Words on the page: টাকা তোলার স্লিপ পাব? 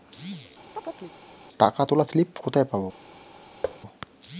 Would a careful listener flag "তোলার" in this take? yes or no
no